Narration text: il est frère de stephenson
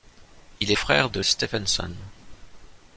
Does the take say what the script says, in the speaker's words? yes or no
yes